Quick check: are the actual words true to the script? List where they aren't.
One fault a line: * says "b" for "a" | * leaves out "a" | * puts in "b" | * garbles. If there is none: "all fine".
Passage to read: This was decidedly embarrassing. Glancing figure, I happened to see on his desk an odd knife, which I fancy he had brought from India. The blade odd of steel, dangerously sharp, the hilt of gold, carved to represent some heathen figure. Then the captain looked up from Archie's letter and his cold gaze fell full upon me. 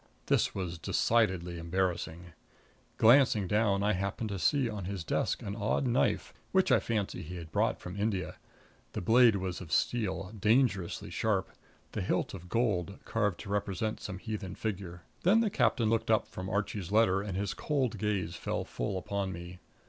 * says "down" for "figure"
* says "was" for "odd"